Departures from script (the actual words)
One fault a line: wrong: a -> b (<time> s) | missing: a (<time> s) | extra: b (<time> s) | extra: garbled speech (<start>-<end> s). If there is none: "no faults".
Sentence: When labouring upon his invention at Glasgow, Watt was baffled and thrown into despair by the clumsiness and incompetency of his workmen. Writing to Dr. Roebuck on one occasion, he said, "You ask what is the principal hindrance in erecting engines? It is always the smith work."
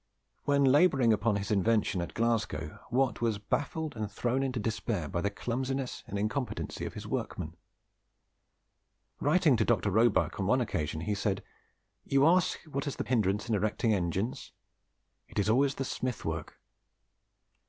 missing: principal (13.0 s)